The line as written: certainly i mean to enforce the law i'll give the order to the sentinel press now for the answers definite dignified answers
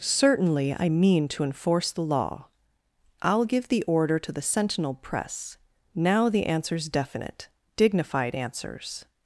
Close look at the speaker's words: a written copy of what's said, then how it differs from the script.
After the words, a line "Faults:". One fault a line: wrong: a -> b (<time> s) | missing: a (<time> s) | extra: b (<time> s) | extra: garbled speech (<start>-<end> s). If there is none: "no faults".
certainly i mean to enforce the law i'll give the order to the sentinel press now the answers definite dignified answers
Faults:
missing: for (6.3 s)